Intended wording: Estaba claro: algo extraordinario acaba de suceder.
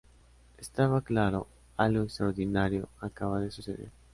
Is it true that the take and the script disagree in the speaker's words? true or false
false